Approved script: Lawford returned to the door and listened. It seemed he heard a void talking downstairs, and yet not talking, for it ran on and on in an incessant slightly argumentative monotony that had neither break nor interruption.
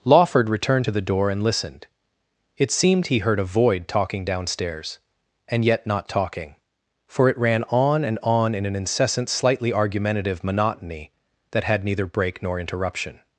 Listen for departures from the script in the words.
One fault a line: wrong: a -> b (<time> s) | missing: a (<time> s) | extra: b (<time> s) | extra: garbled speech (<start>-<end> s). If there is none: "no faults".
no faults